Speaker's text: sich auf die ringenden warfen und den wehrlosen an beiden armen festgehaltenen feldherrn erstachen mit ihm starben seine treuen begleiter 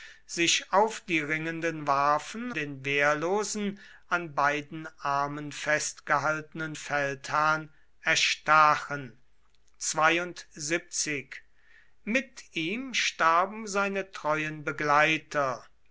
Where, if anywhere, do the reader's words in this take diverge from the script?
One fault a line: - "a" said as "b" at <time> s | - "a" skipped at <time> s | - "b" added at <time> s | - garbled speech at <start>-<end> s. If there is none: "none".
- "und" skipped at 2.5 s